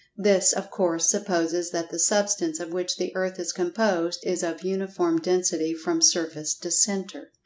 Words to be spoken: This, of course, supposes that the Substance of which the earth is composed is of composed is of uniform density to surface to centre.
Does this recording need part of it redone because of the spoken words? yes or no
yes